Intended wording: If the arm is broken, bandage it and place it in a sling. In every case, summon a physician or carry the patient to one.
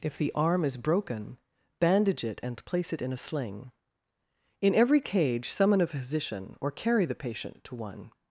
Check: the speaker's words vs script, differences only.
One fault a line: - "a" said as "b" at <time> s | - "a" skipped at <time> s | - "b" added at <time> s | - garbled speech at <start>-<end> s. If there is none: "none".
- "case" said as "cage" at 5.0 s